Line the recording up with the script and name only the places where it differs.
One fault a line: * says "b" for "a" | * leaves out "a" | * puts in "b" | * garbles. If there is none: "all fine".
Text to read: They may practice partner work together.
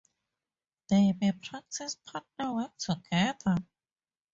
all fine